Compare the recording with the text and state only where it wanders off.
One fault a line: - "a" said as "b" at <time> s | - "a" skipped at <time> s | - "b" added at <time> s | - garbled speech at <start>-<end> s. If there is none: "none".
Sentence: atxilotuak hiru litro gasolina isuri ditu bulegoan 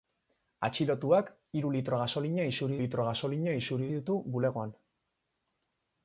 - "litro gasolina isuri" added at 2.8 s